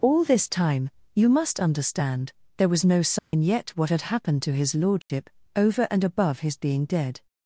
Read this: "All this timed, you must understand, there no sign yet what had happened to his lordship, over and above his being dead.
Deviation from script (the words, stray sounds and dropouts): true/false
true